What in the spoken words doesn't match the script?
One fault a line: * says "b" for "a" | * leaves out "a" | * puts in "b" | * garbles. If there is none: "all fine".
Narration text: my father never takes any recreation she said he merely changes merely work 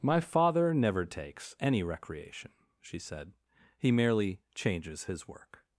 * says "his" for "merely"